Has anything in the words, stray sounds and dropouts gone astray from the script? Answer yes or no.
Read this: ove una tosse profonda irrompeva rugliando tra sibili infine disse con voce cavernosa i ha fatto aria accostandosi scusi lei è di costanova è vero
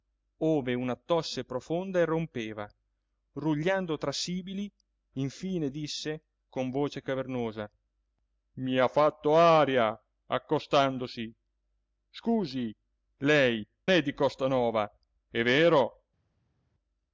no